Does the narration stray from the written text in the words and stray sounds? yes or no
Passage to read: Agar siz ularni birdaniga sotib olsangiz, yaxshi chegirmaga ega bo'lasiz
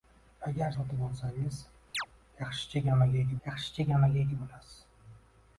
yes